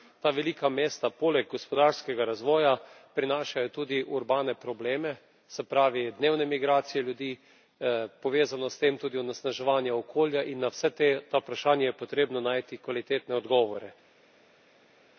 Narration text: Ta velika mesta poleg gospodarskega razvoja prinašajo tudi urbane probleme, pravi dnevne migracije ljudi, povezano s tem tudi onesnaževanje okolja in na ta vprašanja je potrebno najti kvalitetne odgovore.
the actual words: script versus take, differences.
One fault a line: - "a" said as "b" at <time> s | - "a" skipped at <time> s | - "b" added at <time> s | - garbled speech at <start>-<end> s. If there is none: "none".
- "se" added at 5.5 s
- "vsa" added at 10.7 s